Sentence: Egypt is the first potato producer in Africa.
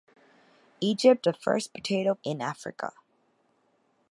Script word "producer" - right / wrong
wrong